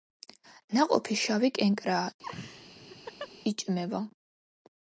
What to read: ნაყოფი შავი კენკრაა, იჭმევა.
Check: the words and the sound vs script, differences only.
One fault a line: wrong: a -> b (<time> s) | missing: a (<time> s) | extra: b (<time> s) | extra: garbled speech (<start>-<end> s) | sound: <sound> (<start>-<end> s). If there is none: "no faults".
sound: laugh (2.2-3.3 s)